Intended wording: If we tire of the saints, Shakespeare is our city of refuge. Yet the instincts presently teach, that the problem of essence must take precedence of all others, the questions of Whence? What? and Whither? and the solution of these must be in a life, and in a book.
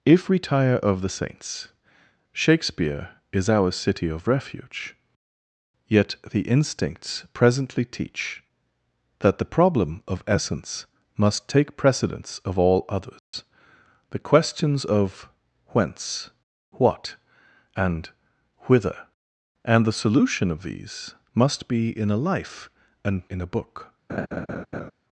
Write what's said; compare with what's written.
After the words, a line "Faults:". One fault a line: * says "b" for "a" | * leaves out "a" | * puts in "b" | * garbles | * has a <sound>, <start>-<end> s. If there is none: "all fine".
If we tire of the saints, Shakespeare is our city of refuge. Yet the instincts presently teach, that the problem of essence must take precedence of all others, the questions of Whence? What? and Whither? and the solution of these must be in a life, and in a book.
Faults:
* has a dropout, 13.2-13.3 s
* has a laugh, 24.1-24.9 s